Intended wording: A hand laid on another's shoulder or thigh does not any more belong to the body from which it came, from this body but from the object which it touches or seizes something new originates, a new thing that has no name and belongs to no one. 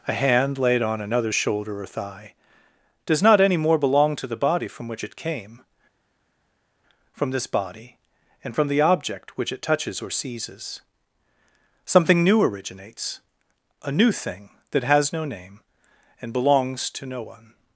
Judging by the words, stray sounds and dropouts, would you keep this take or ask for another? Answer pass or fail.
fail